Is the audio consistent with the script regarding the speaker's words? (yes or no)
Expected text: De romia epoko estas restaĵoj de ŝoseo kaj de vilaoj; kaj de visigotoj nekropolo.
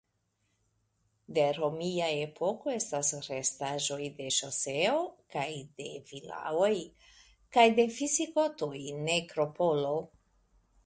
yes